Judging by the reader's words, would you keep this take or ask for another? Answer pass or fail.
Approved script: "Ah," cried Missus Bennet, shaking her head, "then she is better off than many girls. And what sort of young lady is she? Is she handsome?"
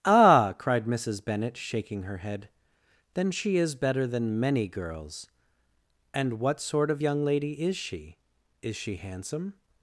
fail